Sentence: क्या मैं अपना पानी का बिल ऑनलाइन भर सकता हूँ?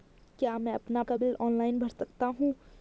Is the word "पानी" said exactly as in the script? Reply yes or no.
no